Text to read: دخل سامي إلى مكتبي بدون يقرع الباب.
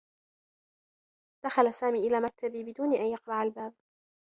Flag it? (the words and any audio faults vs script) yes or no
yes